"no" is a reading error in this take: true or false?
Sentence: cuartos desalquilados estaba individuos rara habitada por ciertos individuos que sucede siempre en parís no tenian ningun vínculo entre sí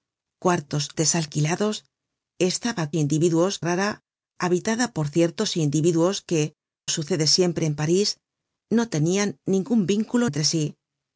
false